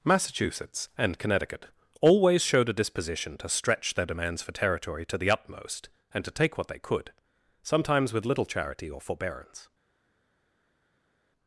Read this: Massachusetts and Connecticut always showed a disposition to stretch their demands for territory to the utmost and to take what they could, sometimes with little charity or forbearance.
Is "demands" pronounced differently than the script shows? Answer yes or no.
no